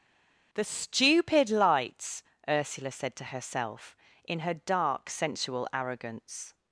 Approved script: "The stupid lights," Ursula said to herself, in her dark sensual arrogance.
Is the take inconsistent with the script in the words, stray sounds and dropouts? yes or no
no